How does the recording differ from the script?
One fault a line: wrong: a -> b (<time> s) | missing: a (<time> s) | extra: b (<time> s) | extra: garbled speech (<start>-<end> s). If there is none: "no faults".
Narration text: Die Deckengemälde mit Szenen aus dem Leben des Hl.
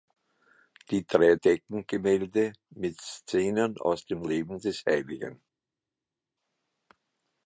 extra: drei (1.1 s)